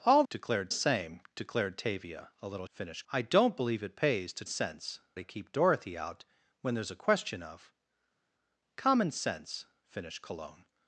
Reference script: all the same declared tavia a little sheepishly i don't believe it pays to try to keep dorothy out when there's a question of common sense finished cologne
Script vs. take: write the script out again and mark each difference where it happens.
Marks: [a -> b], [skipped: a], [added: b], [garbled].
all [the -> declared] same declared tavia a little [sheepishly -> finished] i don't believe it pays to [try -> sense] to keep dorothy out when there's a question of common sense finished cologne